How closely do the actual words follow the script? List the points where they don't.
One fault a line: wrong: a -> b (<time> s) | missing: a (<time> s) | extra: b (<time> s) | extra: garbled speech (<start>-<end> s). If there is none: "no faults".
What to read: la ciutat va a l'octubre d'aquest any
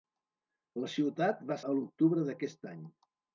no faults